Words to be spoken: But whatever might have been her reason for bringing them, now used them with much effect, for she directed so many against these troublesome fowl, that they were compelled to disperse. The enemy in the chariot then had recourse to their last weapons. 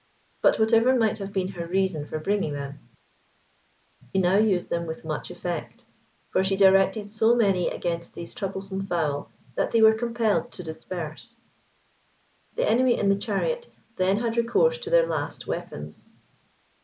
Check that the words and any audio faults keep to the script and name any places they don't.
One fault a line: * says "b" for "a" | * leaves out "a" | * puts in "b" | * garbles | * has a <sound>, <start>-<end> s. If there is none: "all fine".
all fine